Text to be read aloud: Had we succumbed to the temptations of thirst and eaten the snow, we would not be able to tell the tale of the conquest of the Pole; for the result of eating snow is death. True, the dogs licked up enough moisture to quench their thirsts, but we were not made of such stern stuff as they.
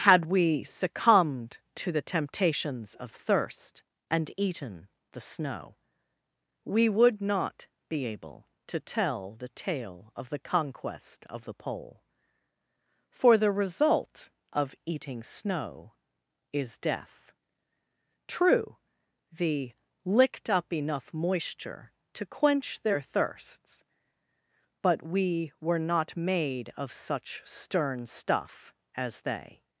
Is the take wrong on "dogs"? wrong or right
wrong